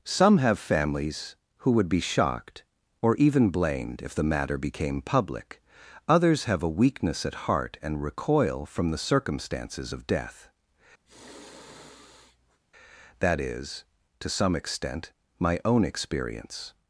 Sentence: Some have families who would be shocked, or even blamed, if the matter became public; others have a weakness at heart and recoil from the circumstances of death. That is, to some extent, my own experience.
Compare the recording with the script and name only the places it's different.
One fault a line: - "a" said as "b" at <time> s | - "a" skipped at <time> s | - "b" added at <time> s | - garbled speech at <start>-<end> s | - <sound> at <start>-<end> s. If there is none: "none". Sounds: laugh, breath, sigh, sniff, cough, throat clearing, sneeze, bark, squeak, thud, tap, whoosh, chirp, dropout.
- sigh at 11.1-12.6 s